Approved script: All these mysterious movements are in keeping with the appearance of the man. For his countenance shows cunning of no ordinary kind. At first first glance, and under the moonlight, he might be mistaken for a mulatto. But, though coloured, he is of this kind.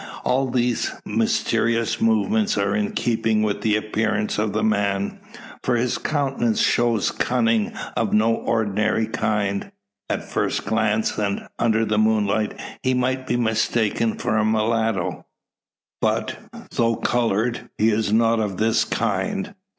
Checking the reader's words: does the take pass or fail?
fail